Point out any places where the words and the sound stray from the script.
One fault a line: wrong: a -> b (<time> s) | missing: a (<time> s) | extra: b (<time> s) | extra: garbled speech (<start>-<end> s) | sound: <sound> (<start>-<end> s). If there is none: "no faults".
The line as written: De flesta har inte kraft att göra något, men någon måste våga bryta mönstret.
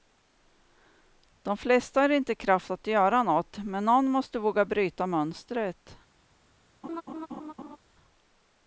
sound: laugh (6.8-7.8 s)